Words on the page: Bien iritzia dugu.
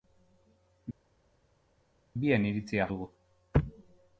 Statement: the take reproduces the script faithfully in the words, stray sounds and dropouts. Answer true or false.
true